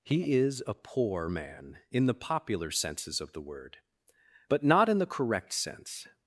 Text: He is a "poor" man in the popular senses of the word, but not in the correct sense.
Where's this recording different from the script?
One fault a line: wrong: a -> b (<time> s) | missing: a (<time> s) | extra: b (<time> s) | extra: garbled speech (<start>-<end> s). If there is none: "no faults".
no faults